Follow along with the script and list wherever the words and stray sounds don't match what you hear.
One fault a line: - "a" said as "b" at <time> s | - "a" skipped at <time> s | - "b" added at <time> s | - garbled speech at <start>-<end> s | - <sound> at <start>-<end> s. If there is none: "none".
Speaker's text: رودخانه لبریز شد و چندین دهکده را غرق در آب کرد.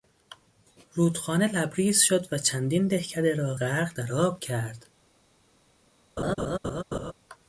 - laugh at 6.2-7.1 s